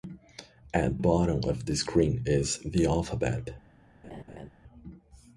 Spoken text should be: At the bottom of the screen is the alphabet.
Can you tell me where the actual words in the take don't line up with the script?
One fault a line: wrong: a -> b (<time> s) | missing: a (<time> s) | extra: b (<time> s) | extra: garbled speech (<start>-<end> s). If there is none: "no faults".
missing: the (1.0 s)